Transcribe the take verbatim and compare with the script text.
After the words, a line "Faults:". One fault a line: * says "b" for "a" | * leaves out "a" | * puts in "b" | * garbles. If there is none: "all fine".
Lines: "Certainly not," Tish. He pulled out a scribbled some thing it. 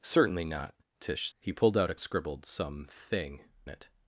"Certainly not," Tish. He pulled out a scribbled some thing it.
Faults:
all fine